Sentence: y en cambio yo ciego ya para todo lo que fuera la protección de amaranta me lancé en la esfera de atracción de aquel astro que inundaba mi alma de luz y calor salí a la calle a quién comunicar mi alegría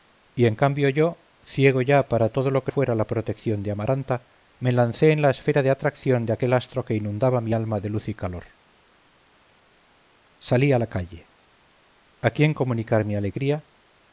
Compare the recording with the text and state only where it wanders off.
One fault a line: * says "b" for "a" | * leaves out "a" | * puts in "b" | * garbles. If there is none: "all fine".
all fine